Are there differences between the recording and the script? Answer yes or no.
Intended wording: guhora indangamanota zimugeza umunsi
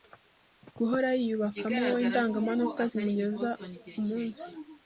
yes